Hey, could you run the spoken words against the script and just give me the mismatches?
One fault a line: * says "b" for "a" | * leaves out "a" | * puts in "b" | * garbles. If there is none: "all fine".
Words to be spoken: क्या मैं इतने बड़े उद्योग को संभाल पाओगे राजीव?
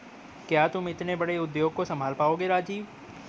* says "तुम" for "मैं"